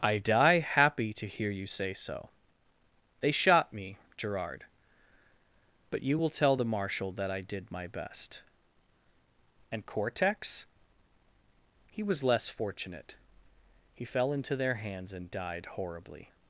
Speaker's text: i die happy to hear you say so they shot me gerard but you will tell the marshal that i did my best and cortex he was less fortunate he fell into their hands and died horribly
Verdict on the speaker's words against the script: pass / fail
pass